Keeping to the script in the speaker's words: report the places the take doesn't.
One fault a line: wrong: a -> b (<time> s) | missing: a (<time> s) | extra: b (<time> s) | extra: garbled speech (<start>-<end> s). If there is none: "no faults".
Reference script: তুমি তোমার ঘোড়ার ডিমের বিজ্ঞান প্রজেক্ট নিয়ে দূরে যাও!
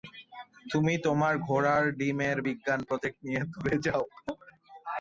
no faults